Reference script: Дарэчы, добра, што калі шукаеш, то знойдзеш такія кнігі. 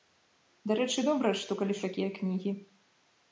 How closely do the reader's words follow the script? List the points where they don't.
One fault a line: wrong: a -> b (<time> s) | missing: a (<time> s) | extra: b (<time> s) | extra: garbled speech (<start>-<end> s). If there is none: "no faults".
missing: шукаеш то знойдзеш (1.8 s)